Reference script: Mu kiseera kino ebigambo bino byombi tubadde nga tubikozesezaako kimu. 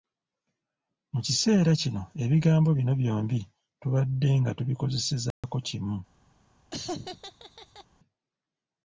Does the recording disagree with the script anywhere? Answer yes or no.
no